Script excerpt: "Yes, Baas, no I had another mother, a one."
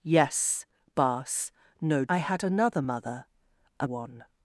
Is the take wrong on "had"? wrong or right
right